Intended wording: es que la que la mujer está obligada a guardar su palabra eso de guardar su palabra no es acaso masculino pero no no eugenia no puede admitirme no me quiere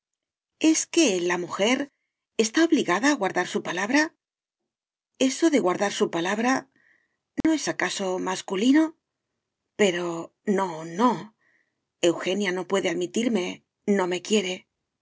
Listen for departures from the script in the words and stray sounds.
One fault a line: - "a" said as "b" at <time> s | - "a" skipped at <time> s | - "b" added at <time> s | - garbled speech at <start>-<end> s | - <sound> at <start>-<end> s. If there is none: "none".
- "que la" skipped at 1.4 s
- dropout at 7.4-7.4 s